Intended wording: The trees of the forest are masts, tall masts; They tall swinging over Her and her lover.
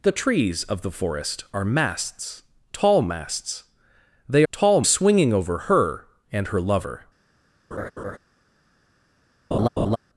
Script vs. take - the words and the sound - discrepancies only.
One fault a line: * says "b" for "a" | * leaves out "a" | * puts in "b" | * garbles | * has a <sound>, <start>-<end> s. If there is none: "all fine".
* has a laugh, 7.7-8.2 s
* has a laugh, 9.5-10.0 s